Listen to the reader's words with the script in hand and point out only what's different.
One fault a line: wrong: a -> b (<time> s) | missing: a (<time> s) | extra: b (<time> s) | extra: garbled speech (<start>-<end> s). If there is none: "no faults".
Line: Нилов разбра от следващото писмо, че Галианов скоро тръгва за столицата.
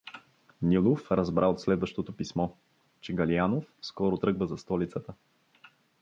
no faults